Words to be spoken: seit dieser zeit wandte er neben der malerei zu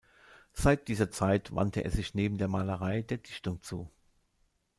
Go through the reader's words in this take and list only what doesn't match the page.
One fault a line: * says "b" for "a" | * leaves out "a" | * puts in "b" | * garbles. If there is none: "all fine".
* puts in "sich"
* puts in "der dichtung"